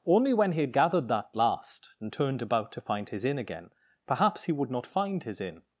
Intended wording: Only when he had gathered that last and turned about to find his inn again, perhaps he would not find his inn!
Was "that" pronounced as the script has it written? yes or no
yes